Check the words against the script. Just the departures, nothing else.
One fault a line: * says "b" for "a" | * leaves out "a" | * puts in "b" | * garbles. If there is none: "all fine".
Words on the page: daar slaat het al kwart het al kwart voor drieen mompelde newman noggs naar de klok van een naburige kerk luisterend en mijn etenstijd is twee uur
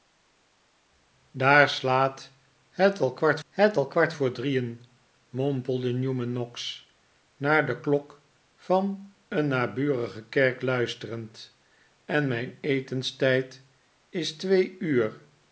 all fine